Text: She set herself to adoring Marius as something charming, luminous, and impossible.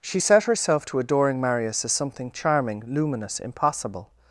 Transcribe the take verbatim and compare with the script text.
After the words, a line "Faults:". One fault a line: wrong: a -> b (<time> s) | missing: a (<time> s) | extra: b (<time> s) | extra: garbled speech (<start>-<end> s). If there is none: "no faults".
She set herself to adoring Marius as something charming, luminous, impossible.
Faults:
missing: and (3.4 s)